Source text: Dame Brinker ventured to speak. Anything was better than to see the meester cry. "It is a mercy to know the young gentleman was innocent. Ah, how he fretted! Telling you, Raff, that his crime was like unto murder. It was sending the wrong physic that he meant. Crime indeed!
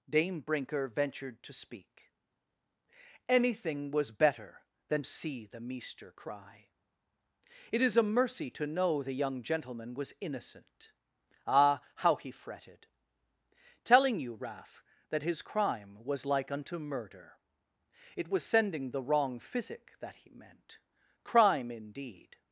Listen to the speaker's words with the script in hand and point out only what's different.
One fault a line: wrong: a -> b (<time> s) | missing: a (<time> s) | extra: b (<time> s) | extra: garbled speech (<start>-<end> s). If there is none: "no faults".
missing: to (5.0 s)